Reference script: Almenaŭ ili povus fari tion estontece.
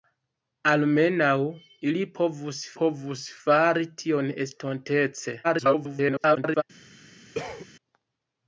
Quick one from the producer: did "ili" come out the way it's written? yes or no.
yes